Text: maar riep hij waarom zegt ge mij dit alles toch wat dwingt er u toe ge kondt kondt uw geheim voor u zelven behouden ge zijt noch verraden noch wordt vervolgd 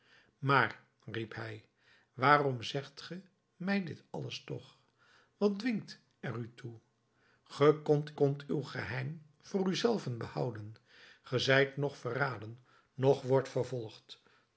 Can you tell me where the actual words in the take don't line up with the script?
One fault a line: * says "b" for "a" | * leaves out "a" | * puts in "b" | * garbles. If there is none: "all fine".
all fine